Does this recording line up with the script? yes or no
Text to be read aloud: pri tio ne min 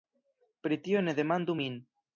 no